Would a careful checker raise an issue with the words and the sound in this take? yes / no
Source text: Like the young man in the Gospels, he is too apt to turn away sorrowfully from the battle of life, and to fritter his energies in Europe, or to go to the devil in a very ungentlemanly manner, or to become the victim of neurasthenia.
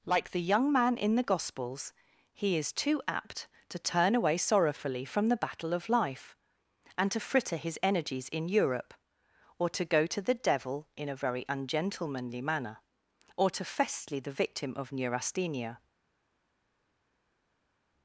yes